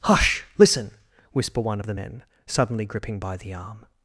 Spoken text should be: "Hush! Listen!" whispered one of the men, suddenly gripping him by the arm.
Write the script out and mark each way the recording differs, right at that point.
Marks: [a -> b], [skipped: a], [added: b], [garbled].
"Hush! Listen!" [whispered -> whisper] one of the men, suddenly gripping [skipped: him] by the arm.